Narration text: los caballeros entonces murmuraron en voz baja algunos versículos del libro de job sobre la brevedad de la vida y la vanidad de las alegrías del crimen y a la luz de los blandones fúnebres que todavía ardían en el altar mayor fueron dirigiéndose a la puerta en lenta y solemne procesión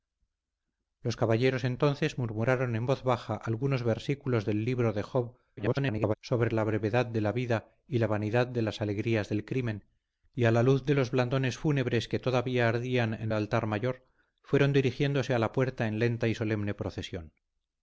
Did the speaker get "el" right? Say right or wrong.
wrong